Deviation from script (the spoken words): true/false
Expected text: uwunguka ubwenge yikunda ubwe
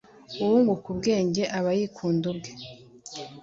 true